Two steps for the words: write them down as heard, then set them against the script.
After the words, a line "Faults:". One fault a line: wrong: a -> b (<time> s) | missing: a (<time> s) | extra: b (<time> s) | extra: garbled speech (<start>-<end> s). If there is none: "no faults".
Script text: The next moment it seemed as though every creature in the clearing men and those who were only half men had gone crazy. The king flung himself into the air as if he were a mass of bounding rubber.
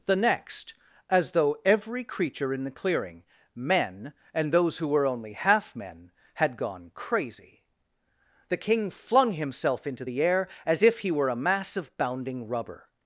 The next as though every creature in the clearing men and those who were only half men had gone crazy. The king flung himself into the air as if he were a mass of bounding rubber.
Faults:
missing: moment it seemed (0.7 s)